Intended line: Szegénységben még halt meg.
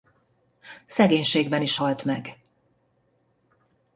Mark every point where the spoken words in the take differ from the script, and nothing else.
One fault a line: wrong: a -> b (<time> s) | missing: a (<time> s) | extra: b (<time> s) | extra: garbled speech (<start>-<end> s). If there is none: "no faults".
wrong: még -> is (1.6 s)